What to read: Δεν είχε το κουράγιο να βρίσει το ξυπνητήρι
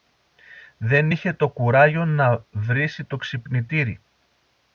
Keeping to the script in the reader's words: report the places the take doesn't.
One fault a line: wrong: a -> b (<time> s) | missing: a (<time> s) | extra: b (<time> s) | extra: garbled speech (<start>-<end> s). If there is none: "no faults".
no faults